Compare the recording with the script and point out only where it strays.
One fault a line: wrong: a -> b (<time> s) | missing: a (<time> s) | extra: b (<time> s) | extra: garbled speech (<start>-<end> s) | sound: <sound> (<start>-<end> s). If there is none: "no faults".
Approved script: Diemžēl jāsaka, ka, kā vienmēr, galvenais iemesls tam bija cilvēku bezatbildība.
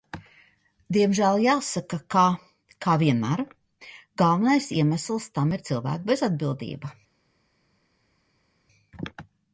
wrong: bija -> ir (5.6 s)